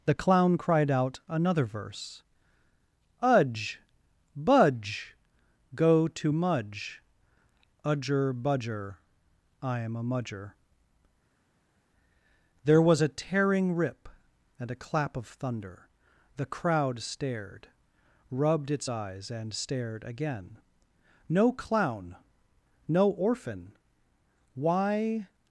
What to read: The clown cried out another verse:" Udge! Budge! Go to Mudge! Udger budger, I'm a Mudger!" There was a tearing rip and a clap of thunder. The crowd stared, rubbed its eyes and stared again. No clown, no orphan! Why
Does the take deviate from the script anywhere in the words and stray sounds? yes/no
no